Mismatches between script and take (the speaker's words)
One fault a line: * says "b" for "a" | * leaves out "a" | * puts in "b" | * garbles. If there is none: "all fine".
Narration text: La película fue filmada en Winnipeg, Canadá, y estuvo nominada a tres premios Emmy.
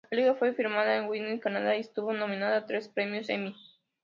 all fine